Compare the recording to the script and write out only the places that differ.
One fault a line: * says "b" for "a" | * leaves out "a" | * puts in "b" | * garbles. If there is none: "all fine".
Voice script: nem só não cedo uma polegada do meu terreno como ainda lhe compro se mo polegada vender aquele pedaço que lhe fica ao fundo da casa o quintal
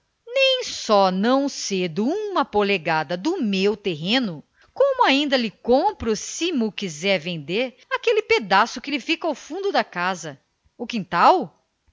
* says "quiser" for "polegada"